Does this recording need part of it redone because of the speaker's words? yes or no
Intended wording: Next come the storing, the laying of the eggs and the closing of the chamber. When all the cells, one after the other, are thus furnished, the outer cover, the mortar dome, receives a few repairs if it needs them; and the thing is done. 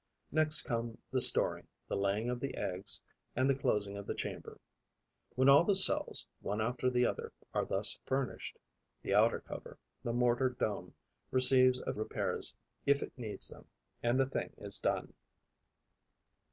yes